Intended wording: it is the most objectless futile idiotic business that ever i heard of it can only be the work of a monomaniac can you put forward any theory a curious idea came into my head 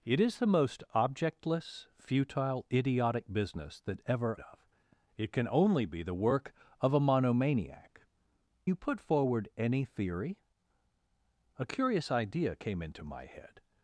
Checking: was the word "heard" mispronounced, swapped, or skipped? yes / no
yes